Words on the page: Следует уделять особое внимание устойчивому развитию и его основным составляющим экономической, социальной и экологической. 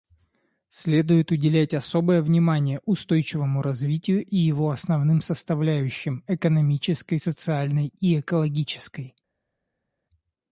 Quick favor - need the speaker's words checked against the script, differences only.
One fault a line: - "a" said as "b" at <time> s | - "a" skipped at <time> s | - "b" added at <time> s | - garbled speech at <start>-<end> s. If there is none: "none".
none